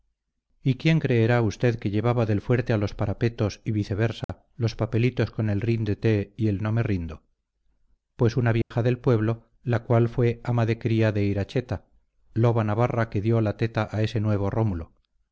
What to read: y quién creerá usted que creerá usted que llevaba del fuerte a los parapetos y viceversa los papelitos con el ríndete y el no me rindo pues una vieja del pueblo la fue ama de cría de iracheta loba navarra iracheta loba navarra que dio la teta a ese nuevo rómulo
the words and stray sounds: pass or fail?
fail